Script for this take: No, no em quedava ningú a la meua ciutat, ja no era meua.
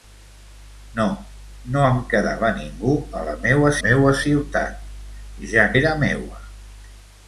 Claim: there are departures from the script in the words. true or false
true